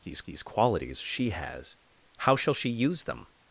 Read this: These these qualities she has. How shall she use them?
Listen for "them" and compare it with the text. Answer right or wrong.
right